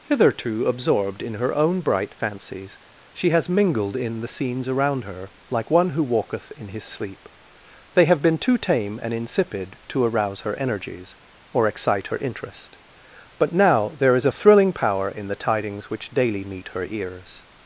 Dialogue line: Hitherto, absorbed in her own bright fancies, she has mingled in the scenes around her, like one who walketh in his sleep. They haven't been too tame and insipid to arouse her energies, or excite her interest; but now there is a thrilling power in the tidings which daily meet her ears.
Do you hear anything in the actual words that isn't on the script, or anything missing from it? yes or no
yes